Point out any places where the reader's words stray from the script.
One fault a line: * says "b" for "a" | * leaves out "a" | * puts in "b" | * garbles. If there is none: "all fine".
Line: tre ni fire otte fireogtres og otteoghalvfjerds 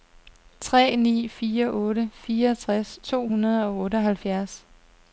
* puts in "to hundrede"